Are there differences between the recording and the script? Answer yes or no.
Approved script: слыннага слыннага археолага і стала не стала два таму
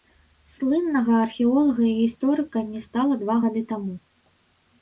yes